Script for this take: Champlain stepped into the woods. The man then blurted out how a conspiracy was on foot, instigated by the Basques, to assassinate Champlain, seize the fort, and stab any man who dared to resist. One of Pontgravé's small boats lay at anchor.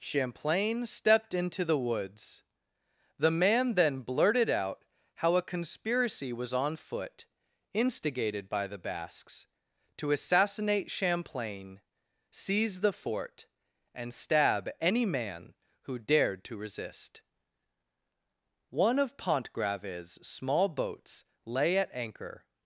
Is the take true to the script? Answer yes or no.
yes